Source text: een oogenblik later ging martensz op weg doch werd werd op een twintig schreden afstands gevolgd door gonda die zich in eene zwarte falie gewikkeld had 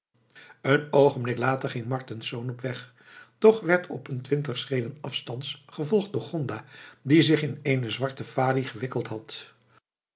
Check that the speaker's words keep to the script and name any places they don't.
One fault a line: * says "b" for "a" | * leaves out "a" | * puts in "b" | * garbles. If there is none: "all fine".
* leaves out "werd"